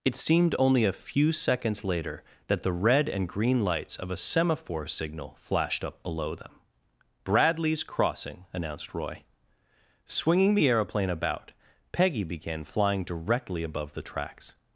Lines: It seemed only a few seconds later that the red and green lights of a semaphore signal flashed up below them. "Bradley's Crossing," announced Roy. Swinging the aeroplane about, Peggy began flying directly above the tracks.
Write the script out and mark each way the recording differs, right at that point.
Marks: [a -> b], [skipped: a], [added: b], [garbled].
It seemed only a few seconds later that the red and green lights of a semaphore signal flashed up below them. "Bradley's Crossing," announced Roy. Swinging the aeroplane about, Peggy began flying directly above the tracks.